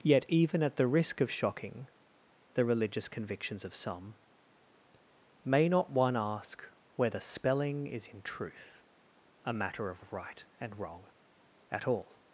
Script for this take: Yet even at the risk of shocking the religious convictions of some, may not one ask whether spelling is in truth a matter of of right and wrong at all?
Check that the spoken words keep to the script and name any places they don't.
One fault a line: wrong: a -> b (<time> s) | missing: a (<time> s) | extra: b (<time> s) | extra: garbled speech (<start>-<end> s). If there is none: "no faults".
no faults